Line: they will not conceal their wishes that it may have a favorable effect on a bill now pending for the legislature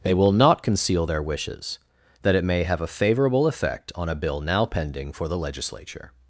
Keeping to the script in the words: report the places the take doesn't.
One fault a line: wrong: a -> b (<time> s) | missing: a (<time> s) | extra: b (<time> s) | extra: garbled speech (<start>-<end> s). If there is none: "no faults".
no faults